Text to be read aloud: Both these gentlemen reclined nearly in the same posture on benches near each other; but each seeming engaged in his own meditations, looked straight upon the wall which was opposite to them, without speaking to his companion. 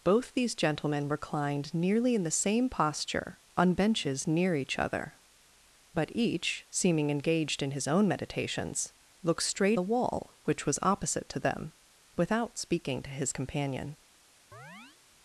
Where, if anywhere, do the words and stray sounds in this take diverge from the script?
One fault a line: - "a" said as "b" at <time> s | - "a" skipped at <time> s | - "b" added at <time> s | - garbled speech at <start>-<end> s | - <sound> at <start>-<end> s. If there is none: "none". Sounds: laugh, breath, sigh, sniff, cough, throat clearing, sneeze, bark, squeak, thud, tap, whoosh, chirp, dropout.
- "upon" skipped at 9.8 s
- chirp at 14.5-15.0 s